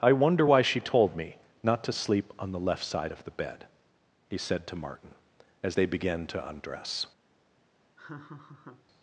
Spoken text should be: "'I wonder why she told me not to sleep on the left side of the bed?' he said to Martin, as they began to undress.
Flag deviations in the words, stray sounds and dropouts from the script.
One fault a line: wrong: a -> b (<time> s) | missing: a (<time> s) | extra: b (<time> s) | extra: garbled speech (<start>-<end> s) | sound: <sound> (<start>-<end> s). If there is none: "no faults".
sound: laugh (8.0-8.8 s)